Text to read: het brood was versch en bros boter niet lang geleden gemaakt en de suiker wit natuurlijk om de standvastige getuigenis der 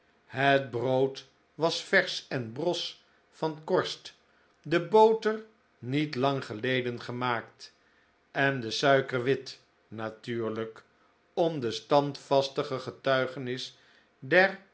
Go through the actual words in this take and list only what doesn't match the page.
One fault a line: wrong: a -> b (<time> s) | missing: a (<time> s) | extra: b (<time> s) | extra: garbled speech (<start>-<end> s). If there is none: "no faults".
extra: van korst de (3.3 s)